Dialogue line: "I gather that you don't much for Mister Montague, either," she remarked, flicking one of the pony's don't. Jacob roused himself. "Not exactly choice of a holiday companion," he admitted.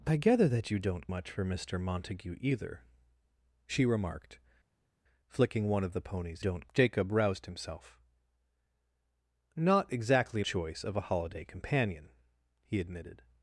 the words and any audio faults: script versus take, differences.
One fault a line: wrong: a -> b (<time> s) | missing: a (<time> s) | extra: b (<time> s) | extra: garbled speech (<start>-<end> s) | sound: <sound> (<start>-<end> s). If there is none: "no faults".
no faults